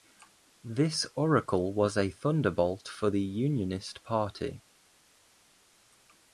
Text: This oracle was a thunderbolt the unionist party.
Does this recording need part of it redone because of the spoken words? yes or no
yes